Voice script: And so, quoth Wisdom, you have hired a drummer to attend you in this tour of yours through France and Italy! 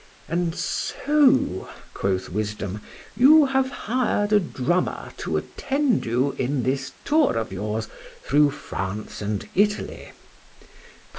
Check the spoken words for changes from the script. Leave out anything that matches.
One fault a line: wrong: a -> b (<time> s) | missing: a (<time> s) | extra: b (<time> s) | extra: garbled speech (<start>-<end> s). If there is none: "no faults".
no faults